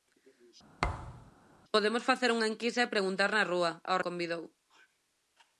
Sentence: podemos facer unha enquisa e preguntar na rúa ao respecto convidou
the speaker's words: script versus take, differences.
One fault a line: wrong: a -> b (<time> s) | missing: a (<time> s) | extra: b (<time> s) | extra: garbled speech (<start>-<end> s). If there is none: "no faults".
missing: respecto (4.0 s)